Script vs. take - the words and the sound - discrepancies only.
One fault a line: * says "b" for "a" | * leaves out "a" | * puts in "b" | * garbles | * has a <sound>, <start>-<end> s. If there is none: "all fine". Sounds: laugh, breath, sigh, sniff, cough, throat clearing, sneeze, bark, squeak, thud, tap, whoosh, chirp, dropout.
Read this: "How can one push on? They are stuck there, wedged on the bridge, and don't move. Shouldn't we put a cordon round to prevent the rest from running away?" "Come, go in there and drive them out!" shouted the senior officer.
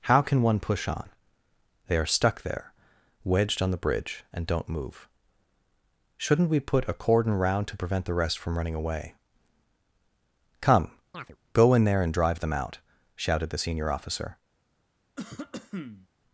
* has a chirp, 11.1-11.4 s
* has a cough, 15.2-16.1 s